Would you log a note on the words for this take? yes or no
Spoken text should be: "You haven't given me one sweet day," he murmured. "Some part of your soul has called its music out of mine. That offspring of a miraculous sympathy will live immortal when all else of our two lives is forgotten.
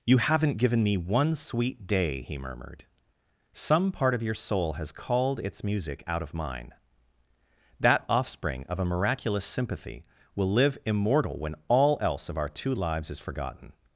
no